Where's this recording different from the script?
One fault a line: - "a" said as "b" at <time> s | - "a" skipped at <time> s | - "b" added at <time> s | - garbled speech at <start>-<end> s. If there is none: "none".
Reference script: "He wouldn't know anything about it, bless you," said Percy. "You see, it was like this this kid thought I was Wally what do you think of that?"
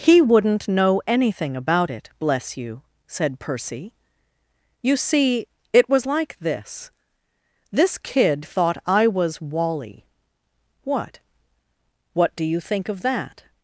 - "what" added at 12.1 s